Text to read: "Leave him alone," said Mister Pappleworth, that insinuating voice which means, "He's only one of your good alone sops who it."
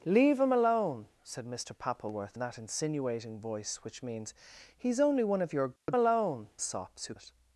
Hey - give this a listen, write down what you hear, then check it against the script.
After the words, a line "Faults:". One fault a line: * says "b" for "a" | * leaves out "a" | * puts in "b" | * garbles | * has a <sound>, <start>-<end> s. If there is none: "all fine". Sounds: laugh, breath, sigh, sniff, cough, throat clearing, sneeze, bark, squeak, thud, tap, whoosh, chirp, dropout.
"Leave him alone," said Mister Pappleworth, that insinuating voice which means, "He's only one of your good alone sops who it."
Faults:
* has a dropout, 5.8-5.9 s